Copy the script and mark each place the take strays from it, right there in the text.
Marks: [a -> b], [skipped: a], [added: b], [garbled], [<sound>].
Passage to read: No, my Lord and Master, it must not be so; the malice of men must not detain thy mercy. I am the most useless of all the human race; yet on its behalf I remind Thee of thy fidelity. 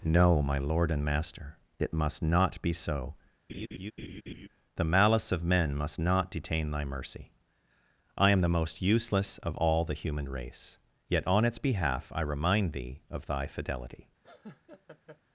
No, my Lord and Master, it must not be so; [laugh] the malice of men must not detain thy mercy. I am the most useless of all the human race; yet on its behalf I remind Thee of thy fidelity. [laugh]